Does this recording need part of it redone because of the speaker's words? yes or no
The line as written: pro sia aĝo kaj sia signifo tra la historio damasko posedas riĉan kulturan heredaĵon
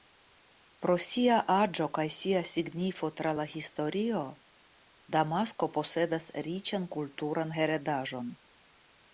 no